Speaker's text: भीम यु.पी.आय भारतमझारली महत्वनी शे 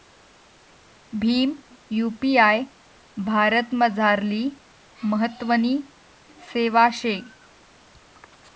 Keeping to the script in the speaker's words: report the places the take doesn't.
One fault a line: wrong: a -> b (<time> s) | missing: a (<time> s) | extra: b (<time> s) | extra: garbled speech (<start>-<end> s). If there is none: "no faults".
extra: सेवा (6.5 s)